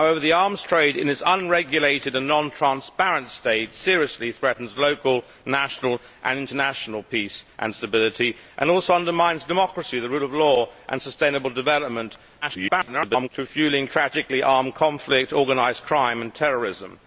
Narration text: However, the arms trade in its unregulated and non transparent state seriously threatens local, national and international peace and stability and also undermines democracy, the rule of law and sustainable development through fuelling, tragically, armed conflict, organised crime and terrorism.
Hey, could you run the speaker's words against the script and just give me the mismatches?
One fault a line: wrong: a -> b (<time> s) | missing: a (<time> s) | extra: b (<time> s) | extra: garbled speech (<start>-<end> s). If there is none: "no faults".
extra: garbled speech (12.4-13.3 s)